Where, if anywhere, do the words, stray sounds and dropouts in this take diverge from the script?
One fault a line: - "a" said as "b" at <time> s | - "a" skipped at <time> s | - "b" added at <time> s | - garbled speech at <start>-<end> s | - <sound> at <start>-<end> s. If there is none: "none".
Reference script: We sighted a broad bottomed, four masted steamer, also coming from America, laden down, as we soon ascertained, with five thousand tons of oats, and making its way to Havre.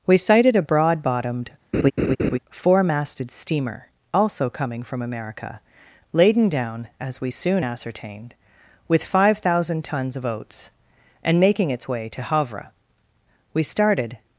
- laugh at 1.7-2.4 s
- "We started" added at 13.5 s